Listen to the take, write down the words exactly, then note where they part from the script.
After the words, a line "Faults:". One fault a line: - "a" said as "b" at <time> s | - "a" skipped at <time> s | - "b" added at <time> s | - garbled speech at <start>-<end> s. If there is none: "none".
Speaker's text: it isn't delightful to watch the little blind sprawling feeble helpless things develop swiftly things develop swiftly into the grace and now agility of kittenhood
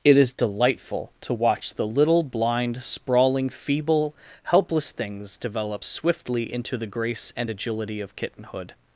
it is delightful to watch the little blind sprawling feeble helpless things develop swiftly into the grace and agility of kittenhood
Faults:
- "isn't" said as "is" at 0.2 s
- "things develop swiftly" skipped at 6.5 s
- "now" skipped at 7.5 s